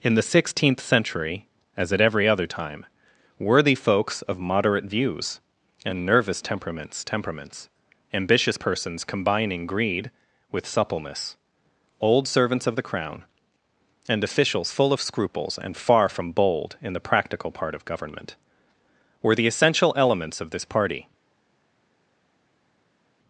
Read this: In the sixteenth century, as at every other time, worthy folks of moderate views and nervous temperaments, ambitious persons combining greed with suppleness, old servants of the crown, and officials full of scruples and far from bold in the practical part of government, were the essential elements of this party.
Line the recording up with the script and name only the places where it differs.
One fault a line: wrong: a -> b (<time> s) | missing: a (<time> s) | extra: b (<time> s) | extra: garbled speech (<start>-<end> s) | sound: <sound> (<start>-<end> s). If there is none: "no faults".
extra: temperaments (7.0 s)